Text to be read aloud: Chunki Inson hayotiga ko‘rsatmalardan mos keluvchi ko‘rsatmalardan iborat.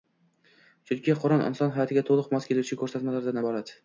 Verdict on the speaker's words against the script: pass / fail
fail